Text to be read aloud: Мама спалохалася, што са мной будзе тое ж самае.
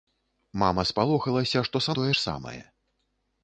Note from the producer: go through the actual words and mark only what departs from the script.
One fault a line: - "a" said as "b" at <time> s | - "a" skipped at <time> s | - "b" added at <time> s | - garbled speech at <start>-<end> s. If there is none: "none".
- "мной будзе" skipped at 1.9 s